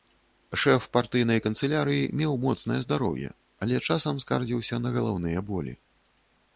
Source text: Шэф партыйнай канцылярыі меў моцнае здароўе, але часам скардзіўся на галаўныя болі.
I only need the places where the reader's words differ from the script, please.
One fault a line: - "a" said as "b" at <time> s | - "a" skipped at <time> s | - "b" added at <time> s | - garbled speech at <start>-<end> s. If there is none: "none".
none